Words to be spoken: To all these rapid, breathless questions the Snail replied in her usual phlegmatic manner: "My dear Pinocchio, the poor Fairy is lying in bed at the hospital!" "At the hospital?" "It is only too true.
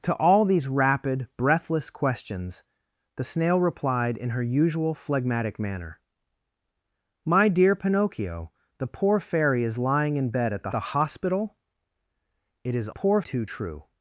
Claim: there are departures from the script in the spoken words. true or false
true